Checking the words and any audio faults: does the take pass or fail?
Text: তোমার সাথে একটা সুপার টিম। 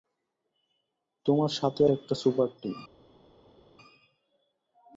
pass